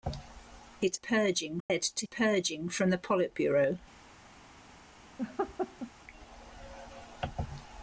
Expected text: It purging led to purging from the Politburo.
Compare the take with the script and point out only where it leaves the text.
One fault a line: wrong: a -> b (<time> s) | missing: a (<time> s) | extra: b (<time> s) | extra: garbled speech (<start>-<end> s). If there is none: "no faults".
no faults